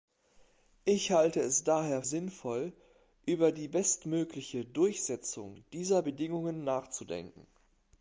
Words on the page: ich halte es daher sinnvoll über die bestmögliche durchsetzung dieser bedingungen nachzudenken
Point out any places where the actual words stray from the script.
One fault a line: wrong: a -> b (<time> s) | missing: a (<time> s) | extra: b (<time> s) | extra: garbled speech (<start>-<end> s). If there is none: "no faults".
no faults